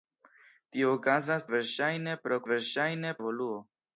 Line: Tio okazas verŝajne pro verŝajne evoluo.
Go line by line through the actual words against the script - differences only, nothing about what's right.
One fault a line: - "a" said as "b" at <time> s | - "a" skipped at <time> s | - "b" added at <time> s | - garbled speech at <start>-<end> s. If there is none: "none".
none